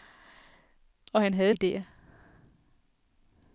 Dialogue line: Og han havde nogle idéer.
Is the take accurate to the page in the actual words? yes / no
no